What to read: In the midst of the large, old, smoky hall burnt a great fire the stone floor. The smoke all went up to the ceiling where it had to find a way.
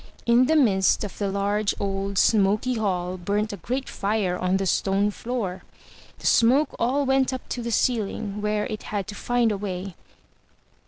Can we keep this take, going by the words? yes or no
no